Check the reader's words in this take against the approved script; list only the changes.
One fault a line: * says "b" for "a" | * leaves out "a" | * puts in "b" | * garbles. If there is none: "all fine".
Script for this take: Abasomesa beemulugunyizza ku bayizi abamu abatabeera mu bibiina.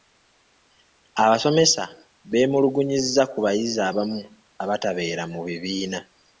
all fine